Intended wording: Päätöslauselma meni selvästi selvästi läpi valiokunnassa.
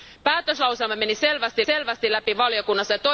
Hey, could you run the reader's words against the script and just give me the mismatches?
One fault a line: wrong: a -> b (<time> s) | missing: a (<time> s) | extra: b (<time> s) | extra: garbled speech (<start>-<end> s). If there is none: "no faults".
no faults